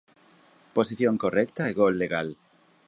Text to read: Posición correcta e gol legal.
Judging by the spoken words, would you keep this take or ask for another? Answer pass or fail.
pass